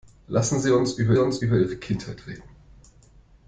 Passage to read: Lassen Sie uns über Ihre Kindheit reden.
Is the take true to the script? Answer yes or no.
no